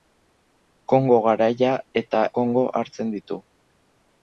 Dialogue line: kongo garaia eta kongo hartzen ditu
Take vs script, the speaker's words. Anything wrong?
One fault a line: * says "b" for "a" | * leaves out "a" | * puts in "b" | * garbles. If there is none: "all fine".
all fine